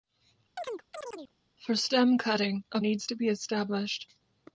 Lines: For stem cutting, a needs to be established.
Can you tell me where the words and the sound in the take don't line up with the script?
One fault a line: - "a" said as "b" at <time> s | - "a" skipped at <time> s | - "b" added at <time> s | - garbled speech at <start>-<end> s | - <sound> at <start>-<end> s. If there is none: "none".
- chirp at 0.6-1.3 s